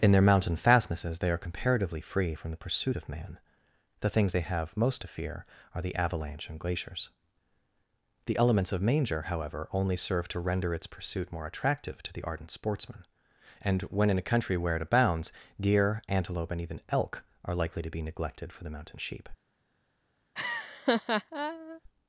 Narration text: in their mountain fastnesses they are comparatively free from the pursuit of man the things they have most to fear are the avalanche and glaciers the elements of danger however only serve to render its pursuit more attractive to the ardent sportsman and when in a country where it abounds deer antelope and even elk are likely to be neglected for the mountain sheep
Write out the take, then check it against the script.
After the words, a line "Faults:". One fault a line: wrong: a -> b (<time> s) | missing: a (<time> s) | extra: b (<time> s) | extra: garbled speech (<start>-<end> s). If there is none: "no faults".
in their mountain fastnesses they are comparatively free from the pursuit of man the things they have most to fear are the avalanche and glaciers the elements of manger however only serve to render its pursuit more attractive to the ardent sportsman and when in a country where it abounds deer antelope and even elk are likely to be neglected for the mountain sheep
Faults:
wrong: danger -> manger (8.8 s)